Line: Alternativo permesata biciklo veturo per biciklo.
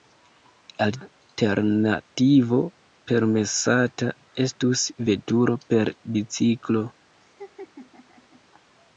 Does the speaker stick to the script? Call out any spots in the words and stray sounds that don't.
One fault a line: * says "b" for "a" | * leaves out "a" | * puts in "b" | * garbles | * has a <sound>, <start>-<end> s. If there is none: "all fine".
* says "estus" for "biciklo"
* has a laugh, 7.2-8.4 s